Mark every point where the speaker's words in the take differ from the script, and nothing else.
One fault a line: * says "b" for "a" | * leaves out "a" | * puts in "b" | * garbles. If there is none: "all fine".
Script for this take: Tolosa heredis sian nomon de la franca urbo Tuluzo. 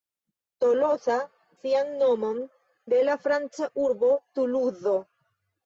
* leaves out "heredis"